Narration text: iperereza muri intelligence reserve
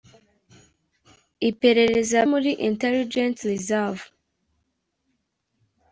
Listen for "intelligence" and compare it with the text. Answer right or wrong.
right